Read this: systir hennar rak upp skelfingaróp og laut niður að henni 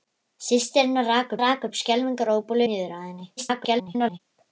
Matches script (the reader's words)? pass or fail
fail